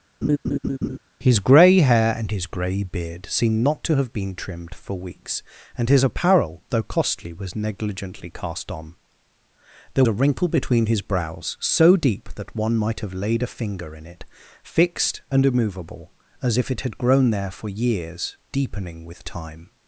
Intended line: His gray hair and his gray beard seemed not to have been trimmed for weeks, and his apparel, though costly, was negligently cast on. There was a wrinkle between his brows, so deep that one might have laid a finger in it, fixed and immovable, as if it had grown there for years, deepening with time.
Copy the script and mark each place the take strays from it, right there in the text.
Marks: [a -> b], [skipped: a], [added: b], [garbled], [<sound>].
[laugh] His gray hair and his gray beard seemed not to have been trimmed for weeks, and his apparel, though costly, was negligently cast on. There [skipped: was] a wrinkle between his brows, so deep that one might have laid a finger in it, fixed and immovable, as if it had grown there for years, deepening with time.